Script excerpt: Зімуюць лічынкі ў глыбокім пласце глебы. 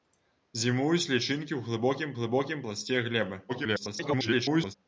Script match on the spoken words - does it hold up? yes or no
no